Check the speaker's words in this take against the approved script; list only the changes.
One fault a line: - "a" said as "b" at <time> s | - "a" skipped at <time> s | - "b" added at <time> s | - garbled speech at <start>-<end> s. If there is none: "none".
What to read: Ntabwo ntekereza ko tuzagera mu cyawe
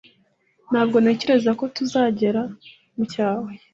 none